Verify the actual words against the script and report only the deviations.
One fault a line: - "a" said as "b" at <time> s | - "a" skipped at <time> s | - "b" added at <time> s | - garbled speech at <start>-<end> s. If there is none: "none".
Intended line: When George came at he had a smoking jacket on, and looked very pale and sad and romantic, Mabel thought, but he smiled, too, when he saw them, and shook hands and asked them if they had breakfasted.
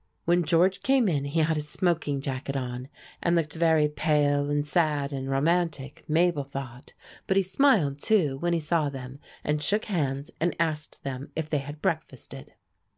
- "at" said as "in" at 1.1 s